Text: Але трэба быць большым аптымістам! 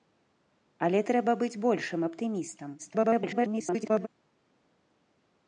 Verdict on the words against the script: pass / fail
fail